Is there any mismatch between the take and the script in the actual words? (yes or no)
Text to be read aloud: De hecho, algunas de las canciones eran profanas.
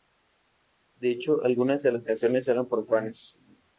no